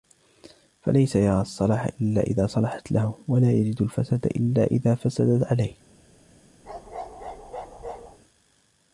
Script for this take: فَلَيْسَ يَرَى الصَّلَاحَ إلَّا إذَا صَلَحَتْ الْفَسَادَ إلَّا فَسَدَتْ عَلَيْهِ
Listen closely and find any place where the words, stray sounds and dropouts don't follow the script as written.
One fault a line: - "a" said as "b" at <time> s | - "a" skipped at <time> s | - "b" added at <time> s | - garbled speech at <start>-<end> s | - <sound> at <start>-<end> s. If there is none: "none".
- "لَهُ وَلَا يَجِدُ" added at 2.9 s
- "إذَا" added at 4.6 s
- bark at 6.6-8.2 s